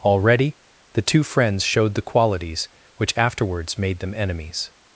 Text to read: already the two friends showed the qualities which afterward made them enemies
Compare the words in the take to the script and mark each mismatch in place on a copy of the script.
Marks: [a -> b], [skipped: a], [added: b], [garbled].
already the two friends showed the qualities which [afterward -> afterwards] made them enemies